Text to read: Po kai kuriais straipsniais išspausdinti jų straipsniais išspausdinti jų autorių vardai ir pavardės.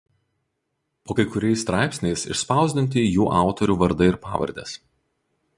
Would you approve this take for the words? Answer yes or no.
no